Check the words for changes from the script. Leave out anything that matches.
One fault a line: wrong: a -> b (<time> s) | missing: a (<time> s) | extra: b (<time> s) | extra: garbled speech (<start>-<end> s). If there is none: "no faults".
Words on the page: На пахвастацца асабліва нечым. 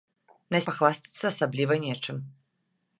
no faults